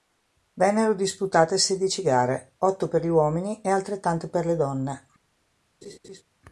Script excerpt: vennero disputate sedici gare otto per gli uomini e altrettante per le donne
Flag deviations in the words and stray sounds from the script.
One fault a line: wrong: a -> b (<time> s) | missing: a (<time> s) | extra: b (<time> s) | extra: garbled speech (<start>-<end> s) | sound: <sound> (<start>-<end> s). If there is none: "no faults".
sound: laugh (5.8-6.2 s)